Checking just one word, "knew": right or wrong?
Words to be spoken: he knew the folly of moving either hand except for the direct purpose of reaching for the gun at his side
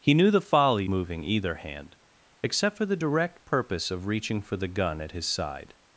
right